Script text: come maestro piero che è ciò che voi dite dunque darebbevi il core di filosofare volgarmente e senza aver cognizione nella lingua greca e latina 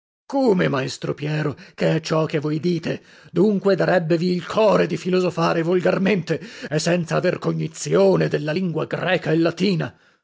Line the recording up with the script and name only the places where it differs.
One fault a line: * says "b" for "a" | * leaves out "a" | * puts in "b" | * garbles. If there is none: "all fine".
* says "della" for "nella"